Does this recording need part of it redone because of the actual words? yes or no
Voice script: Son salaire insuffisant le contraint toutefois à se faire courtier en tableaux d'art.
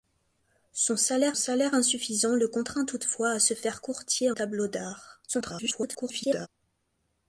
yes